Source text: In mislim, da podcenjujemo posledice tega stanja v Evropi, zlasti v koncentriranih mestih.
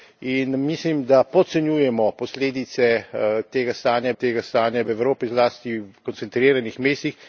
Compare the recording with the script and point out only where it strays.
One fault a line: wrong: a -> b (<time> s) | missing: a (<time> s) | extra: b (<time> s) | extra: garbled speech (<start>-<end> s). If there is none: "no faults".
extra: tega stanja (4.2 s)
missing: v (5.8 s)